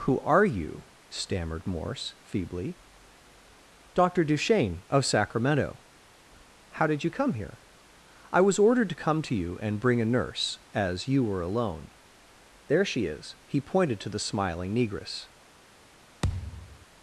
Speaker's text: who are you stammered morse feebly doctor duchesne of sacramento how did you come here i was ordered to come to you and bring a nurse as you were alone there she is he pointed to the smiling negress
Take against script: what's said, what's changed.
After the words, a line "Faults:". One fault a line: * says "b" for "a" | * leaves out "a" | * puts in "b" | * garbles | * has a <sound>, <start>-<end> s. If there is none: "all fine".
who are you stammered morse feebly doctor duchesne of sacramento how did you come here i was ordered to come to you and bring a nurse as you were alone there she is he pointed to the smiling negress
Faults:
* has a thud, 16.2-16.9 s